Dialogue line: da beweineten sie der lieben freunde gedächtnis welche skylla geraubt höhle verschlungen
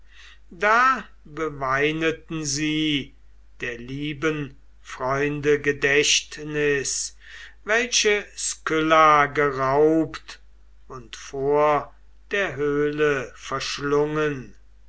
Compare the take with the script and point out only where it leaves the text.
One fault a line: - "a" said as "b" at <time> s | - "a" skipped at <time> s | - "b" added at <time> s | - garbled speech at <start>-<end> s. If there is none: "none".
- "und vor der" added at 10.9 s